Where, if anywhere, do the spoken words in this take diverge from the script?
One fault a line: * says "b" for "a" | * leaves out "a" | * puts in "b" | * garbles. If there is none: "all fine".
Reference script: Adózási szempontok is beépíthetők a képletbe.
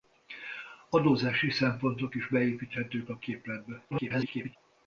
* garbles